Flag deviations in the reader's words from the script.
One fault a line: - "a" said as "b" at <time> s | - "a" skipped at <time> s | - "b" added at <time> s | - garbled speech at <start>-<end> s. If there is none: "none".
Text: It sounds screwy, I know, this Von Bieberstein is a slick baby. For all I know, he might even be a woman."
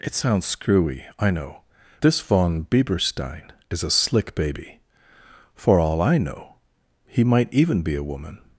none